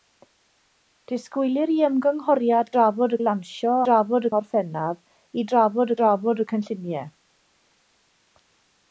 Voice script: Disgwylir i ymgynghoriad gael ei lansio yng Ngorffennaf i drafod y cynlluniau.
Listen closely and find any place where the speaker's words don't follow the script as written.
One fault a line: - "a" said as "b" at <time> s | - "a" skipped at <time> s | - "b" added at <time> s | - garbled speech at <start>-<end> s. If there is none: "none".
- "gael" said as "drafod" at 2.8 s
- "yng" said as "drafod" at 3.9 s
- "drafod" added at 6.0 s